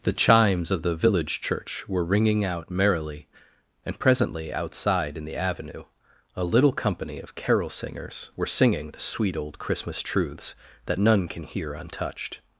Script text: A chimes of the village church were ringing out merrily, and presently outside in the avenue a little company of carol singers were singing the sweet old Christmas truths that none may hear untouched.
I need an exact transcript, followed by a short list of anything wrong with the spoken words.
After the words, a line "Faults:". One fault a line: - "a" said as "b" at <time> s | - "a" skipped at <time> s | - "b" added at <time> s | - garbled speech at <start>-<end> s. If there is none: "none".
The chimes of the village church were ringing out merrily, and presently outside in the avenue a little company of carol singers were singing the sweet old Christmas truths that none can hear untouched.
Faults:
- "A" said as "The" at 0.0 s
- "may" said as "can" at 11.3 s